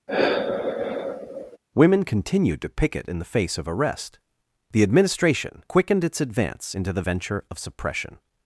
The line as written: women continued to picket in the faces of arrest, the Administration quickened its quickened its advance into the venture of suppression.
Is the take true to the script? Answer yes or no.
no